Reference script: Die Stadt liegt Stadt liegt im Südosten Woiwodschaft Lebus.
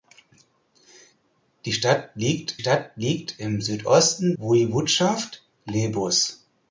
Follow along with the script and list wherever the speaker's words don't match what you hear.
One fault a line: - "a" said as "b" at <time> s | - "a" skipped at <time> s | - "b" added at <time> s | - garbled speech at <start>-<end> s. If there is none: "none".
none